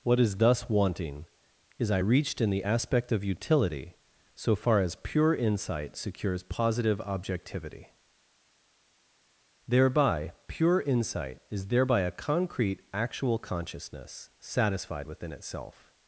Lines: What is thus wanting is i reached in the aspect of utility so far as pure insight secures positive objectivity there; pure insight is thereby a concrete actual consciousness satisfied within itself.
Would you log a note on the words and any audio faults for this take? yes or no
yes